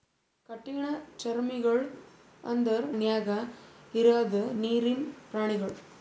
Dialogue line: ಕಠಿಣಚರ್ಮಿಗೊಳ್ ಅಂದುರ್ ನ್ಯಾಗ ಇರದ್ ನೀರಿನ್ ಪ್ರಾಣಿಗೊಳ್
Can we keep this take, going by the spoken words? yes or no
yes